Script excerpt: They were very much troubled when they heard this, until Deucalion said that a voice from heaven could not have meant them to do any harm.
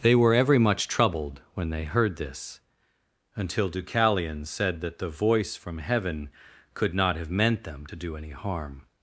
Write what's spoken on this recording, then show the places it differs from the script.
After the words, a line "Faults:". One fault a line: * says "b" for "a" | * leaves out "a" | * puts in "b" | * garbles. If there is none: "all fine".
They were every much troubled when they heard this, until Deucalion said that the voice from heaven could not have meant them to do any harm.
Faults:
* says "every" for "very"
* says "the" for "a"